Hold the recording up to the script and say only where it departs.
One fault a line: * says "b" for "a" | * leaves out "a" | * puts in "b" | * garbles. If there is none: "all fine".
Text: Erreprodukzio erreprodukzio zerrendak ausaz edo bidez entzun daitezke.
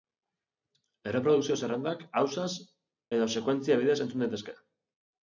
* leaves out "erreprodukzio"
* puts in "sekuentzia"